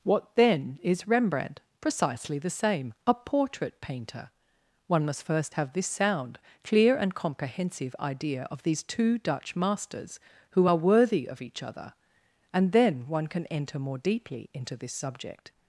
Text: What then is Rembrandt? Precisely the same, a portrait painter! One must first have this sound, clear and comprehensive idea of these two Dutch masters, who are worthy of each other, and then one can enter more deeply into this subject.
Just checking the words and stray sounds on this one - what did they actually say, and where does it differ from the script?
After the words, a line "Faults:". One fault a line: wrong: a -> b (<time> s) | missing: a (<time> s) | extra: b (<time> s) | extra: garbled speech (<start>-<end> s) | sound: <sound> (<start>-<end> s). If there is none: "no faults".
What then is Rembrandt? Precisely the same, a portrait painter! One must first have this sound, clear and comprehensive idea of these two Dutch masters, who are worthy of each other, and then one can enter more deeply into this subject.
Faults:
no faults